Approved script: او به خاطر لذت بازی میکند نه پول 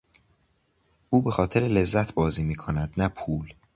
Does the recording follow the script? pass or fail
pass